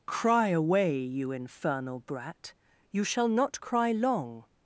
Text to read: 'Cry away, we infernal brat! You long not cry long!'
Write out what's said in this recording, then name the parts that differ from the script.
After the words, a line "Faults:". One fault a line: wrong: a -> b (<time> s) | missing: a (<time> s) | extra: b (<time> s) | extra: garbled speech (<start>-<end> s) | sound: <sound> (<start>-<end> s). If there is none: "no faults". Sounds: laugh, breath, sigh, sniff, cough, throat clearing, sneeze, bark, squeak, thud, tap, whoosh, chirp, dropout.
'Cry away, you infernal brat! You shall not cry long!'
Faults:
wrong: we -> you (1.0 s)
wrong: long -> shall (3.0 s)